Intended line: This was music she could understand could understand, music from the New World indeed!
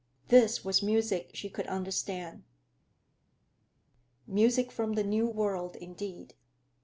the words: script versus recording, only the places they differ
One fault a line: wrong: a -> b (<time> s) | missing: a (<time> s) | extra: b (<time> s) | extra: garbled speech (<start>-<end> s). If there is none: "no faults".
missing: could understand (2.4 s)